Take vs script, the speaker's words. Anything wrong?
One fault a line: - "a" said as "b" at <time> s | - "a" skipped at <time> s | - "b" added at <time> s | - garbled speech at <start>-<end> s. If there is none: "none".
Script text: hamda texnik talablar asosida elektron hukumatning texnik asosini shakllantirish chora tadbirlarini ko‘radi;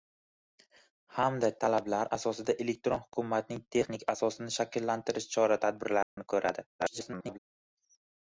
- "texnik" skipped at 1.5 s
- garbled speech at 6.8-7.4 s